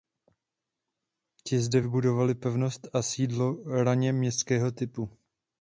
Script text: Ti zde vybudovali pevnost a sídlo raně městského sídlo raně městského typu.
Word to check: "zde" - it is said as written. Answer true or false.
true